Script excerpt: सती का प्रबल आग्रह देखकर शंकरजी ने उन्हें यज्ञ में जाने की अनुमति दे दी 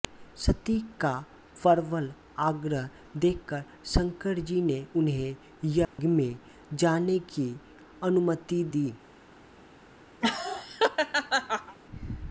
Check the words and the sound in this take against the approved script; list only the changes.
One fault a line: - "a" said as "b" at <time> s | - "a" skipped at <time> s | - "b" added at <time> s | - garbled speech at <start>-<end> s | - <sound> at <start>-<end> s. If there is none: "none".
- dropout at 5.8-6.0 s
- "दे" skipped at 8.6 s
- laugh at 10.2-11.8 s